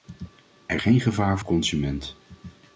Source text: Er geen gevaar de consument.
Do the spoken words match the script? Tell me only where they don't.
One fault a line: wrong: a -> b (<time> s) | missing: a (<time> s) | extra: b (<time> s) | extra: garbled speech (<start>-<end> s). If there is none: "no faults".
no faults